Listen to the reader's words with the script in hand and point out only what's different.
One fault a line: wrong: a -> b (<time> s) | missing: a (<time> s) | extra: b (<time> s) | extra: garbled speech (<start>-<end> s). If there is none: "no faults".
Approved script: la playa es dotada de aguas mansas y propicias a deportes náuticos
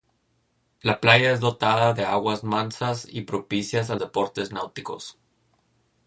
no faults